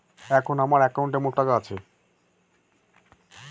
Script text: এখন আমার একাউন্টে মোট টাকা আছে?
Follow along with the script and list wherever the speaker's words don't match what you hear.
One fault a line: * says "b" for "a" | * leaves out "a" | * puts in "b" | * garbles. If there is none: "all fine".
all fine